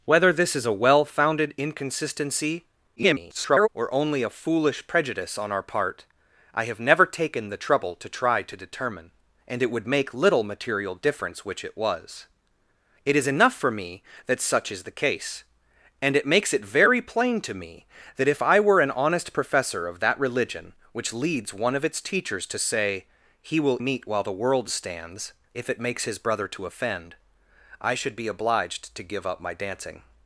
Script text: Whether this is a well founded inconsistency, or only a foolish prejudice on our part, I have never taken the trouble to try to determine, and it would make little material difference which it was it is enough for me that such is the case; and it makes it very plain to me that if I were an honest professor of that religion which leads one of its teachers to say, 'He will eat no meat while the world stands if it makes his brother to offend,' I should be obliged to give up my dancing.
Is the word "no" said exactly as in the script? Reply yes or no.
no